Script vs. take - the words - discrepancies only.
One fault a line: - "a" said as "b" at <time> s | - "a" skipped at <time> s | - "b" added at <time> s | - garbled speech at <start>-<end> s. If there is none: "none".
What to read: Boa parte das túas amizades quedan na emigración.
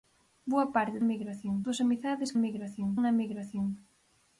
- "das" said as "emigración" at 1.0 s
- "quedan" said as "emigración" at 2.4 s